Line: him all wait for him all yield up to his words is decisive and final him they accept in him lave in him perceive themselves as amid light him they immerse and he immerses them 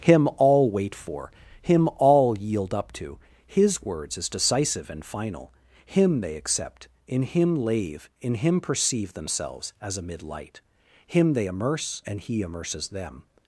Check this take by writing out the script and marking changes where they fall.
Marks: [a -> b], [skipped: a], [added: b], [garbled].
him all wait for him all yield up to his words is decisive and final him they accept in him lave in him perceive themselves as amid light him they immerse and he immerses them